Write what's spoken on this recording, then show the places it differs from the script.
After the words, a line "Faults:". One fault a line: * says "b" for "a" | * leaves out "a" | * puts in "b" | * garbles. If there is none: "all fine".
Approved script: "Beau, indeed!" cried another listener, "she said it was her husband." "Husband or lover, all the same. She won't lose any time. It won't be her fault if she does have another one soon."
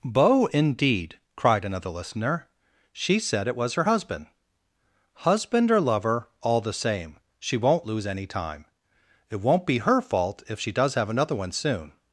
"Beau, indeed!" cried another listener, "she said it was her husband." "Husband or lover, all the same. She won't lose any time. It won't be her fault if she does have another one soon."
Faults:
all fine